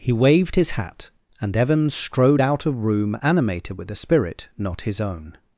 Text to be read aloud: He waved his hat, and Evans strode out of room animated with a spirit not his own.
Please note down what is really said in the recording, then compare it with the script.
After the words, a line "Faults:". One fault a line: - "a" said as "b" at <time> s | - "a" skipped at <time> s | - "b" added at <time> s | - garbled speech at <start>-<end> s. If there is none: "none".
He waved his hat, and Evans strode out of room animated with a spirit not his own.
Faults:
none